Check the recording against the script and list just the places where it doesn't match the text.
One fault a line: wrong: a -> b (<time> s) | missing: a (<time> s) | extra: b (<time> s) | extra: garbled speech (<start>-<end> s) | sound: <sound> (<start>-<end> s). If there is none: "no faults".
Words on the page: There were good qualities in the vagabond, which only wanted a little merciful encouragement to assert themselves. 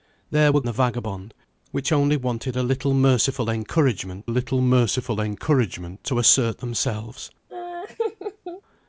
missing: good qualities in (0.6 s)
extra: little merciful encouragement (4.3 s)
sound: laugh (7.5-8.6 s)